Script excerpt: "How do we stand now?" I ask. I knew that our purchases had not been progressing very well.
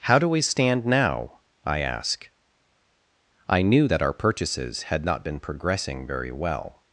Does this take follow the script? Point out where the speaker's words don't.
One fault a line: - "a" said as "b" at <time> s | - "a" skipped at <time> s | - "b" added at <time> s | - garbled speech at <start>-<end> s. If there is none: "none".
none